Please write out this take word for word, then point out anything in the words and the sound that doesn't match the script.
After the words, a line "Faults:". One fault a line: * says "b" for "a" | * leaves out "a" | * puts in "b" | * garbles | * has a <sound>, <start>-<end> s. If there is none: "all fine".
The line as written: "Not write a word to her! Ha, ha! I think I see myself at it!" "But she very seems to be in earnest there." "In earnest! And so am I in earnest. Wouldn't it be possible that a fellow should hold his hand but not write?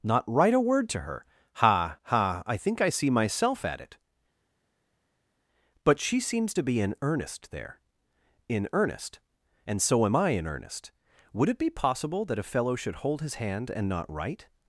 "Not write a word to her! Ha, ha! I think I see myself at it!" "But she seems to be in earnest there." "In earnest! And so am I in earnest. Would it be possible that a fellow should hold his hand and not write?
Faults:
* leaves out "very"
* says "Would" for "Wouldn't"
* says "and" for "but"